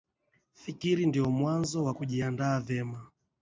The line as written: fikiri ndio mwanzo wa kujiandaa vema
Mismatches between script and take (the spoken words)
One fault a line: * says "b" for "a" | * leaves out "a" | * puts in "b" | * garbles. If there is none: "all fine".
all fine